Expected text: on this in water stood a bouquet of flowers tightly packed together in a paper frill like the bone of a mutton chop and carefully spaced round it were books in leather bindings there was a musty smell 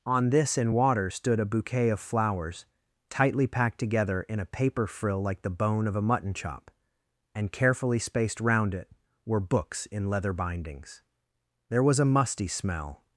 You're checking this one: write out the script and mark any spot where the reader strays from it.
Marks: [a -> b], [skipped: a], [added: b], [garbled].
on this in water stood a bouquet of flowers tightly packed together in a paper frill like the bone of a mutton chop and carefully spaced round it were books in leather bindings there was a musty smell